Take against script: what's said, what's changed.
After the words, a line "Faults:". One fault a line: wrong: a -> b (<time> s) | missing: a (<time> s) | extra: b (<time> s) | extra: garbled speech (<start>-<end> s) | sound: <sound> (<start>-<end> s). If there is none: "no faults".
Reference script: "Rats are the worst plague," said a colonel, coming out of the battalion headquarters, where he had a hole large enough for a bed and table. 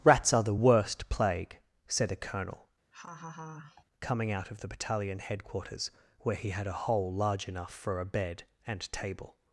"Rats are the worst plague," said a colonel, coming out of the battalion headquarters, where he had a hole large enough for a bed and table.
Faults:
sound: laugh (2.9-3.8 s)